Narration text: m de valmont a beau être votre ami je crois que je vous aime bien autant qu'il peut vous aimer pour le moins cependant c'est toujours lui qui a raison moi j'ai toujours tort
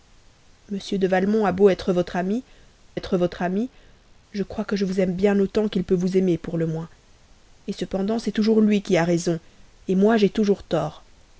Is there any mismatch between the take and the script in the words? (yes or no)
yes